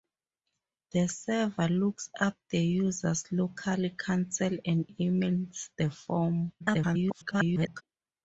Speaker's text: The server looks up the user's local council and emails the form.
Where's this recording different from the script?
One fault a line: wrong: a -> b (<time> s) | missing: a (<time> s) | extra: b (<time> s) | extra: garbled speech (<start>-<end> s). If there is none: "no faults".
extra: garbled speech (6.6-7.8 s)